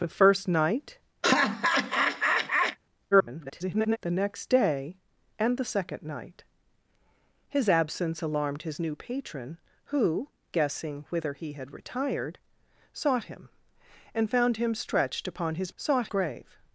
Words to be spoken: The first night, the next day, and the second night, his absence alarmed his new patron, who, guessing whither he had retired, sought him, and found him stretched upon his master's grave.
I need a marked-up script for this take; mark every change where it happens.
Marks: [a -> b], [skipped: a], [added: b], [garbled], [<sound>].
The first night, [laugh] [garbled] the next day, and the second night, his absence alarmed his new patron, who, guessing whither he had retired, sought him, and found him stretched upon his [master's -> sought] grave.